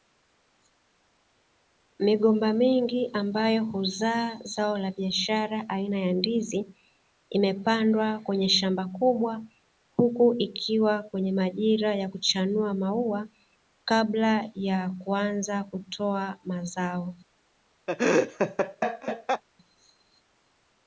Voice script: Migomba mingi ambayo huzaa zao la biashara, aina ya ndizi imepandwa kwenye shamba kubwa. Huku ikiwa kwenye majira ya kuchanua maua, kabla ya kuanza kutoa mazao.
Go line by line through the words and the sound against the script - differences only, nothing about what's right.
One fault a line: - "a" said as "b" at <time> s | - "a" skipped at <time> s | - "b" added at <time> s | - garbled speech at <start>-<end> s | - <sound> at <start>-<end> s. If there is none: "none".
- laugh at 17.9-19.4 s